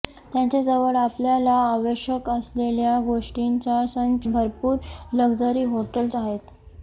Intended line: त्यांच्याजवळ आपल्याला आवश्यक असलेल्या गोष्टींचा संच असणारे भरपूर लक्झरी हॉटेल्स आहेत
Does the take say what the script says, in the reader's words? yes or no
no